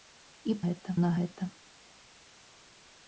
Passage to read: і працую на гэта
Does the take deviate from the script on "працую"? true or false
true